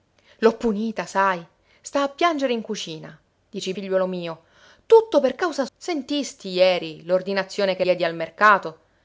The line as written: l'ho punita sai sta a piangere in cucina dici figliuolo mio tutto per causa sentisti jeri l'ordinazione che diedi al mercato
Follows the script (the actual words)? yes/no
yes